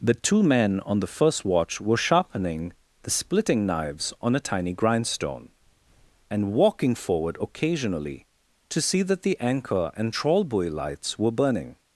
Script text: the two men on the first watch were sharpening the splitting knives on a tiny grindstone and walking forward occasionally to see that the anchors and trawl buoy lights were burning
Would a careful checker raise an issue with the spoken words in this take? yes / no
yes